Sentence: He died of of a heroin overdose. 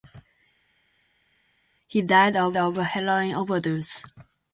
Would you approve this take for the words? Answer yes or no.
yes